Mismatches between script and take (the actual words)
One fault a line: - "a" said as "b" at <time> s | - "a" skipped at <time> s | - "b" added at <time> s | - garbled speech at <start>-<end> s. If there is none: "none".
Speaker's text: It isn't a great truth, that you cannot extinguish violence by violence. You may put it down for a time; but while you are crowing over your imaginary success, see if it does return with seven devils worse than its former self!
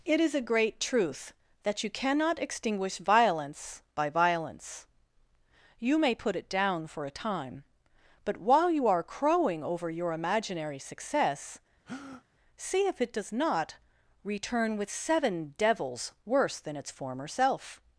- "isn't" said as "is" at 0.2 s
- "not" added at 13.3 s